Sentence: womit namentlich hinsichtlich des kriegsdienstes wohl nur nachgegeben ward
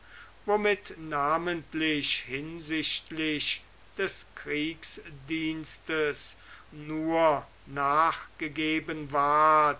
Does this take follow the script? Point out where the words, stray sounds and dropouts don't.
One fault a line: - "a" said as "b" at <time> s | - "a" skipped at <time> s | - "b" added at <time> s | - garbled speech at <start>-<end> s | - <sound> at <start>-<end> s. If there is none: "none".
- "wohl" skipped at 6.4 s